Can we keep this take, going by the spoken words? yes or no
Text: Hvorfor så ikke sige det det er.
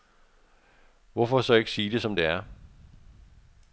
no